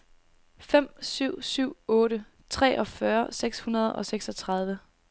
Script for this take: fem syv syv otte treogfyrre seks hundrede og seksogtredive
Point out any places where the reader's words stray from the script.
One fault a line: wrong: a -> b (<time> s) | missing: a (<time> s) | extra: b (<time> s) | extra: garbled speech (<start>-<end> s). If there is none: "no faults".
no faults